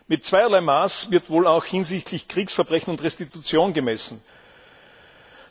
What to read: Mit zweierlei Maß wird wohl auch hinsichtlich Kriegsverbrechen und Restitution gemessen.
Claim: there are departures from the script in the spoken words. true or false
false